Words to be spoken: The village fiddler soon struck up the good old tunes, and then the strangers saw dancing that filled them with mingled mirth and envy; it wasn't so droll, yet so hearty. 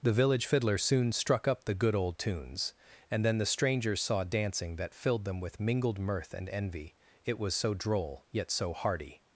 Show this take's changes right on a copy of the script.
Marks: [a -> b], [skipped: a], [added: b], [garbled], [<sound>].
The village fiddler soon struck up the good old tunes, and then the strangers saw dancing that filled them with mingled mirth and envy; it [wasn't -> was] so droll, yet so hearty.